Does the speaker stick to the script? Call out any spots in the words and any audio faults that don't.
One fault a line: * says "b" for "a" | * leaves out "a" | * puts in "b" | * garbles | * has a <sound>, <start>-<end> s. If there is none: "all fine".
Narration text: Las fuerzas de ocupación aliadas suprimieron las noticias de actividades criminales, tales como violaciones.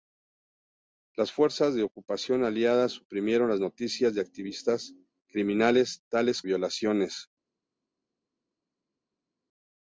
* leaves out "como"